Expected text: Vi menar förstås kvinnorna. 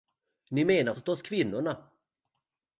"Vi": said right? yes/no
no